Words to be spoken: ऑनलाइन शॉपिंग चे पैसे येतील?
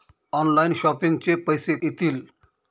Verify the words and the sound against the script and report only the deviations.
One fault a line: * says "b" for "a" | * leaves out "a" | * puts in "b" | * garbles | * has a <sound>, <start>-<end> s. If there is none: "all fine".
all fine